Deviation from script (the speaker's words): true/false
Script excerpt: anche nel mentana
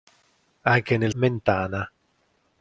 false